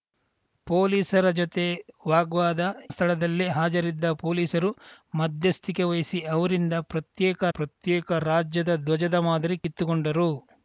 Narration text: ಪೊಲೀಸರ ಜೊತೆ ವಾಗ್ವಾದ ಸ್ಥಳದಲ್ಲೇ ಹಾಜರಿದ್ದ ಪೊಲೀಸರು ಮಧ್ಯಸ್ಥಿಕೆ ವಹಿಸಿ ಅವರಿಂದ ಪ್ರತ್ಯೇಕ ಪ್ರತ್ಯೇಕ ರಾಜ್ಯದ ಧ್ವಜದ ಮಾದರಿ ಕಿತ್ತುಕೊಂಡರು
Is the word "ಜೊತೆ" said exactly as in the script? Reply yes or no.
yes